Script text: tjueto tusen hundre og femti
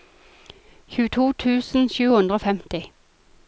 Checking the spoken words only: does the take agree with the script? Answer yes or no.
no